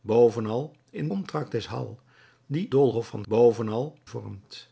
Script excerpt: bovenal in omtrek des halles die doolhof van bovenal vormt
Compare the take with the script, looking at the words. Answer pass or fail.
pass